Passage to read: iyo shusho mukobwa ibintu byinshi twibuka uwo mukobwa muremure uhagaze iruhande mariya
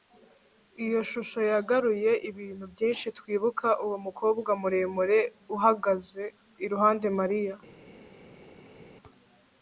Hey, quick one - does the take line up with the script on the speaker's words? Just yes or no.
no